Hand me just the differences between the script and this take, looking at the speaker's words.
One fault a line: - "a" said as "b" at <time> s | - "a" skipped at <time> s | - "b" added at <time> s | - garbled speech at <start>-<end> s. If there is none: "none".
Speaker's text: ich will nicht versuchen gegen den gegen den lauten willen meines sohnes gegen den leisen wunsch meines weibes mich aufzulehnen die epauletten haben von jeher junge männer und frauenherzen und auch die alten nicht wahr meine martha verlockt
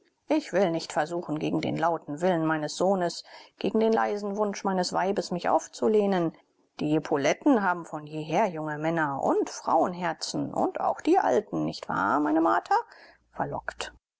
- "gegen den" skipped at 1.8 s